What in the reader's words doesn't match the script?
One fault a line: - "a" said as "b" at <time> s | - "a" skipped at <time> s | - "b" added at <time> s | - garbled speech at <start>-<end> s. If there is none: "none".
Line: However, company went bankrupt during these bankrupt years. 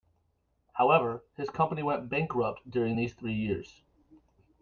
- "his" added at 1.4 s
- "bankrupt" said as "three" at 3.1 s